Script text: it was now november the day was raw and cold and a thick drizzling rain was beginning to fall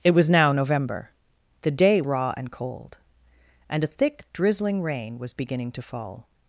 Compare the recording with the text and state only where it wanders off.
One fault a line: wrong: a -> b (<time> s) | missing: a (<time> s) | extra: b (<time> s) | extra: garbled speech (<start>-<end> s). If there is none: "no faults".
missing: was (2.0 s)